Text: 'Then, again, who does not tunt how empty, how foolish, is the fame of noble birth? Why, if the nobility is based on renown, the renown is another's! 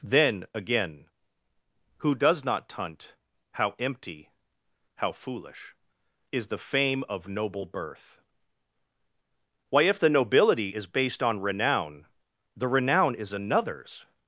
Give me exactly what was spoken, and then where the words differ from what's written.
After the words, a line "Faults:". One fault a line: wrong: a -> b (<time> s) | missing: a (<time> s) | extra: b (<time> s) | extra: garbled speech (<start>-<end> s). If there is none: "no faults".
'Then, again, who does not tunt how empty, how foolish, is the fame of noble birth? Why, if the nobility is based on renown, the renown is another's!
Faults:
no faults